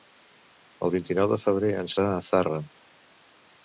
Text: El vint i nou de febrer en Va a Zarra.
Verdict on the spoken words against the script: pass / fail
pass